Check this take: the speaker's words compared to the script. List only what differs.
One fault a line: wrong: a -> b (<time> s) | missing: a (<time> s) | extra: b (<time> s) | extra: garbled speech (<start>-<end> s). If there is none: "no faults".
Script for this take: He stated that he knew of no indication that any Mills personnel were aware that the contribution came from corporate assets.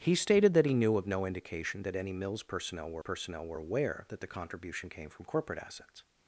extra: personnel were (3.0 s)